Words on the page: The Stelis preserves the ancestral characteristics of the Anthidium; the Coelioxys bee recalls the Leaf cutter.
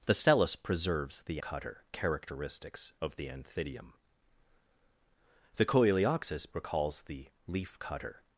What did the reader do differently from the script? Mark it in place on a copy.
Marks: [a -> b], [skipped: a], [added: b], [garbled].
The Stelis preserves the [ancestral -> cutter] characteristics of the Anthidium; the Coelioxys [skipped: bee] recalls the Leaf cutter.